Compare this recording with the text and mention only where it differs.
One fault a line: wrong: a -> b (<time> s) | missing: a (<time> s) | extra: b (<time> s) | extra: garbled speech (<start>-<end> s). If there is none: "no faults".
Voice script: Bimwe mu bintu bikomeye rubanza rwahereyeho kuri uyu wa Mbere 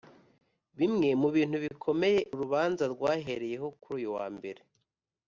no faults